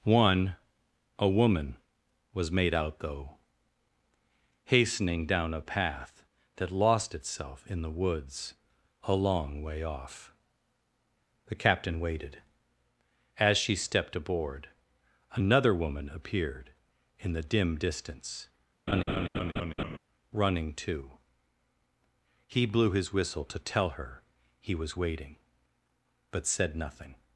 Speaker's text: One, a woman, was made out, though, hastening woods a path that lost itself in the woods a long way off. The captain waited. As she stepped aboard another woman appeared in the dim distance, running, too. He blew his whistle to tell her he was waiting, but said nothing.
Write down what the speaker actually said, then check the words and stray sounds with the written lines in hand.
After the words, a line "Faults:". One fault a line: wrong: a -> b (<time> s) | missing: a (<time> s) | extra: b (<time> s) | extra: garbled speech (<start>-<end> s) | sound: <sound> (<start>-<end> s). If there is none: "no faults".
One, a woman, was made out, though, hastening down a path that lost itself in the woods a long way off. The captain waited. As she stepped aboard another woman appeared in the dim distance, running, too. He blew his whistle to tell her he was waiting, but said nothing.
Faults:
wrong: woods -> down (5.3 s)
sound: laugh (18.9-20.0 s)